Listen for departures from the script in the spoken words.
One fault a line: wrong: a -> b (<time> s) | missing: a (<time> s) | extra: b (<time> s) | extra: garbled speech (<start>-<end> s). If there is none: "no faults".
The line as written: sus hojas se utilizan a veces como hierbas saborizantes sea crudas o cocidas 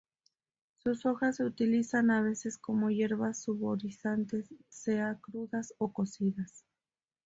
no faults